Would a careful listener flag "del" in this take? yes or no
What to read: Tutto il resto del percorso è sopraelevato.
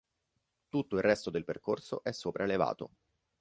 no